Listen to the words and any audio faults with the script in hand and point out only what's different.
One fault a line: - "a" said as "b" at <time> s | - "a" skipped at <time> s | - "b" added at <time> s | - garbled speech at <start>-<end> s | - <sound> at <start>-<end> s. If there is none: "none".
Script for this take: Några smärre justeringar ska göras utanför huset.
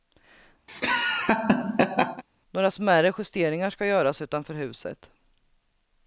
- laugh at 0.7-2.2 s